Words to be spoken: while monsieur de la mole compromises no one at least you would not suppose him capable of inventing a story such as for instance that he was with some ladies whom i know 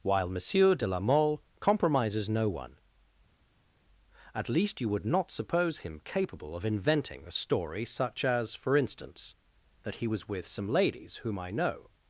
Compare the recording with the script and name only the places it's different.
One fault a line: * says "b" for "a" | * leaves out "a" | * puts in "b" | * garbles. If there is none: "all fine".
all fine